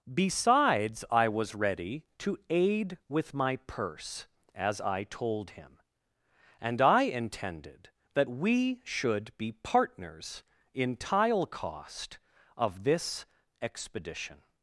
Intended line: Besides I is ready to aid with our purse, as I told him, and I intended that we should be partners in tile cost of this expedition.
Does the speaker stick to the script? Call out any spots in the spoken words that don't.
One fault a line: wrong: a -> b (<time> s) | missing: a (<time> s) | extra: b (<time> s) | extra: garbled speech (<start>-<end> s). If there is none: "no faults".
wrong: is -> was (1.3 s)
wrong: our -> my (3.4 s)